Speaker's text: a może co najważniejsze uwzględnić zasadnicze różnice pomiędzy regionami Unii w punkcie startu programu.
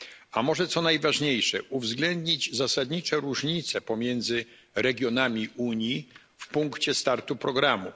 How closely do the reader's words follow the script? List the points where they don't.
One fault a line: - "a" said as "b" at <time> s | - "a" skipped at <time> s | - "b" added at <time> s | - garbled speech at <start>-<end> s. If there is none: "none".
none